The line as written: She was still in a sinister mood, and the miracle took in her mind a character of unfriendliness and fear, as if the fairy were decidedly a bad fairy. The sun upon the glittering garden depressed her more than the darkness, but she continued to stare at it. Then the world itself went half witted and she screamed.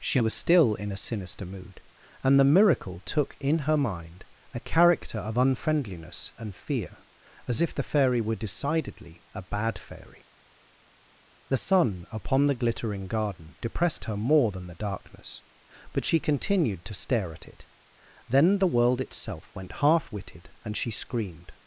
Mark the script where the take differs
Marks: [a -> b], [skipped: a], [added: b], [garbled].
She was still in a sinister mood, and the miracle took in her mind a character of unfriendliness and fear, as if the fairy were decidedly a bad fairy. The sun upon the glittering garden depressed her more than the darkness, but she continued to stare at it. Then the world itself went half witted and she screamed.